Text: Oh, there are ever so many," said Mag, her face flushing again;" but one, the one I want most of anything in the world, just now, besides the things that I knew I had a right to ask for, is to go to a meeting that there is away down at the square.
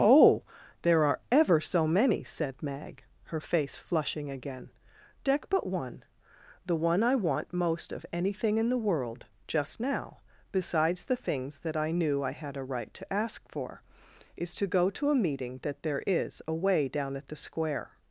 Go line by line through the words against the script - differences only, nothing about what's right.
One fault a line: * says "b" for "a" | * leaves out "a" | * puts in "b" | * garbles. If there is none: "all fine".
* puts in "deck"